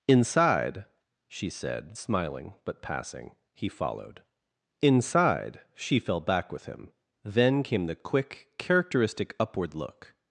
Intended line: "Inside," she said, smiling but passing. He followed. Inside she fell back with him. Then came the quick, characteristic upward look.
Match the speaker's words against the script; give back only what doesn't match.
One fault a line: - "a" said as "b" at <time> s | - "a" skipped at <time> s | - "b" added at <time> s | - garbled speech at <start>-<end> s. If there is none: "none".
none